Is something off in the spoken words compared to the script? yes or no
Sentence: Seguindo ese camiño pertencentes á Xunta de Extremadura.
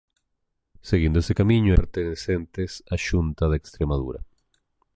no